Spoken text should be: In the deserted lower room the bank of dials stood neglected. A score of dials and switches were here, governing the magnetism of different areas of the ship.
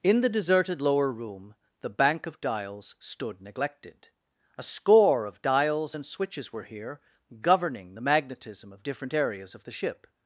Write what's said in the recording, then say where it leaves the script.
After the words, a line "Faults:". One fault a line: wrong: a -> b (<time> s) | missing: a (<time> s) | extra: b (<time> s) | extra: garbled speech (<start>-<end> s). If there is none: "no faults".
In the deserted lower room the bank of dials stood neglected. A score of dials and switches were here, governing the magnetism of different areas of the ship.
Faults:
no faults